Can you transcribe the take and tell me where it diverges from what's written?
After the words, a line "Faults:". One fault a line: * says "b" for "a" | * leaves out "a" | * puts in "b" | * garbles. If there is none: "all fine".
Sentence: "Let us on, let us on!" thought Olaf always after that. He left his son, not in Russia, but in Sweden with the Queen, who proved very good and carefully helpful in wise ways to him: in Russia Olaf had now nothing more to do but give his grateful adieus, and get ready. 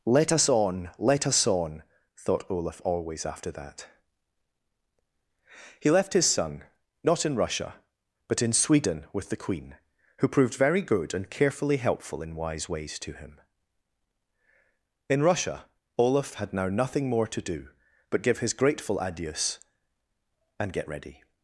"Let us on, let us on!" thought Olaf always after that. He left his son, not in Russia, but in Sweden with the Queen, who proved very good and carefully helpful in wise ways to him: in Russia Olaf had now nothing more to do but give his grateful adieus, and get ready.
Faults:
all fine